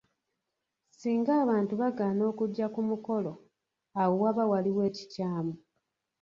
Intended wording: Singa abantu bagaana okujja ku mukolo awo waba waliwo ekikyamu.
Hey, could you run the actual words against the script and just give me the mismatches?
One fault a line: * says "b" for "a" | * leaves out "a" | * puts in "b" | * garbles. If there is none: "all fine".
all fine